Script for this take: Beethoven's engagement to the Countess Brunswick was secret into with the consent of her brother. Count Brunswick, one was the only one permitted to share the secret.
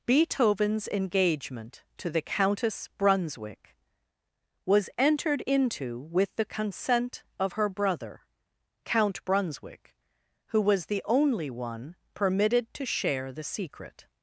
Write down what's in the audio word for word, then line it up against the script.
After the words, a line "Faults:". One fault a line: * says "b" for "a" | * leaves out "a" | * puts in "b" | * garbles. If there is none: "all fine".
Beethoven's engagement to the Countess Brunswick was entered into with the consent of her brother. Count Brunswick, who was the only one permitted to share the secret.
Faults:
* says "entered" for "secret"
* says "who" for "one"